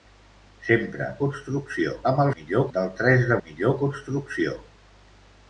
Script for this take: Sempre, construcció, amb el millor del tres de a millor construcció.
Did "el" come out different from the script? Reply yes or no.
no